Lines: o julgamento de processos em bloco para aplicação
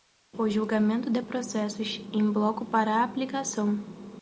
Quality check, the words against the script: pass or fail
pass